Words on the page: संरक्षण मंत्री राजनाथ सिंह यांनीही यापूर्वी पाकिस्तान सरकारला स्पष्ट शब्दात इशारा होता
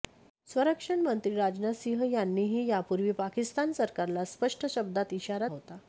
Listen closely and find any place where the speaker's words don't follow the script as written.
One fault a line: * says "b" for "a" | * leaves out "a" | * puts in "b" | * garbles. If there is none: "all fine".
all fine